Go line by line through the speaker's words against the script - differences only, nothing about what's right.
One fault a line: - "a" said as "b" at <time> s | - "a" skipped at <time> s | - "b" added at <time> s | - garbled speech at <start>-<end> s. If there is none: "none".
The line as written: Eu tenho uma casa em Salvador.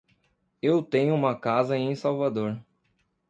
none